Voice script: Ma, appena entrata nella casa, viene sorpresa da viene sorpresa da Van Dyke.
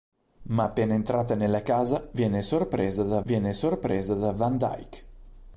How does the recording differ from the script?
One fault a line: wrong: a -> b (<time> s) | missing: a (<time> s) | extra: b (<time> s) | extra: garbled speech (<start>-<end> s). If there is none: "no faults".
no faults